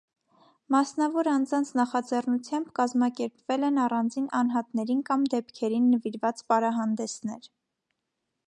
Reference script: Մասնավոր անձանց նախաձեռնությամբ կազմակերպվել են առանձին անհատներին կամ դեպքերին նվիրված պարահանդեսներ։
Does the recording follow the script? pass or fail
pass